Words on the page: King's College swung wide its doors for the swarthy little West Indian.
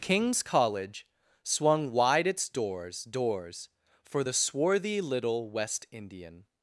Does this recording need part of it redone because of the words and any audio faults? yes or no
yes